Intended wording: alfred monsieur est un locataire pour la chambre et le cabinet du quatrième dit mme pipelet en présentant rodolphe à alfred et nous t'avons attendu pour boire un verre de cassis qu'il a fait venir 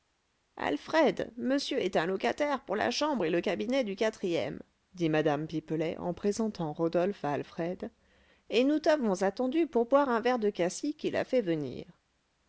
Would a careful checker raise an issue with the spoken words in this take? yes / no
no